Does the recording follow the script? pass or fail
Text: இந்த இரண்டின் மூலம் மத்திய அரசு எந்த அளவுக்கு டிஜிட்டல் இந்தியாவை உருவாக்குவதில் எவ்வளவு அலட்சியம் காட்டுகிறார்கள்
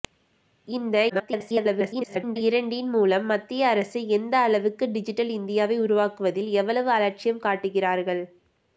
fail